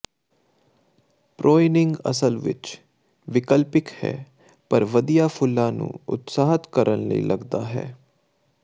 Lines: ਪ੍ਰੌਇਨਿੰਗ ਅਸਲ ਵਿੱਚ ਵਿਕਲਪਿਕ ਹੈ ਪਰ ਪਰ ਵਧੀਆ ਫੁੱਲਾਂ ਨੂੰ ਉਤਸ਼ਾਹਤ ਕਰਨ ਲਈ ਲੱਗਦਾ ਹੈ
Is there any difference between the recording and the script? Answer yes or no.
yes